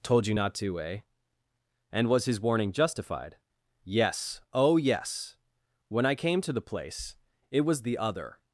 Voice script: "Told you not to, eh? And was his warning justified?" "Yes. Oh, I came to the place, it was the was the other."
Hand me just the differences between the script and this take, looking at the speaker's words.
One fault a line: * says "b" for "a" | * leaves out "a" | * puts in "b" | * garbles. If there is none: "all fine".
* puts in "yes When"
* leaves out "was the"